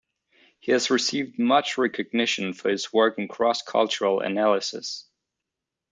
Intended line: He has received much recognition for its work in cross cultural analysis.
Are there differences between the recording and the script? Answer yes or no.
yes